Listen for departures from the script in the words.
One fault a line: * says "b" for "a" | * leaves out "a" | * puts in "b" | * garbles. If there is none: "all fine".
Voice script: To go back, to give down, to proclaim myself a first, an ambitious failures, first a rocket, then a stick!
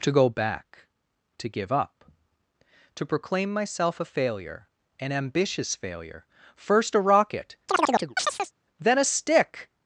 * says "up" for "down"
* says "failure" for "first"
* says "failure" for "failures"